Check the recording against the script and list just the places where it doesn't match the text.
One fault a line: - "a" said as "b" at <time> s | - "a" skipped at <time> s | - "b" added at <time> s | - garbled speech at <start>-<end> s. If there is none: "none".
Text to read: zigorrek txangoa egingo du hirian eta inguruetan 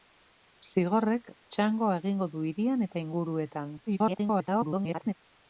- garbled speech at 3.9-5.1 s